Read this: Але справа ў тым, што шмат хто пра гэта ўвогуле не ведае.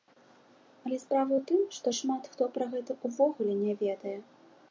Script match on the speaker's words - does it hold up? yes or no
yes